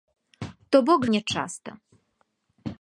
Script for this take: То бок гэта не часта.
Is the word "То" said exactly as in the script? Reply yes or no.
yes